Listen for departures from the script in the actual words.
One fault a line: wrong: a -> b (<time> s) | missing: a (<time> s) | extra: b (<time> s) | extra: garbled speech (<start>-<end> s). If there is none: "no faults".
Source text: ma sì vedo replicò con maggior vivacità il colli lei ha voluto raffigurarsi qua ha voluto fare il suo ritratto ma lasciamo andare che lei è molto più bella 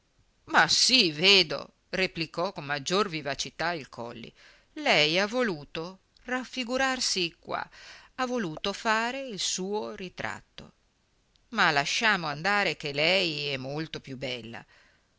no faults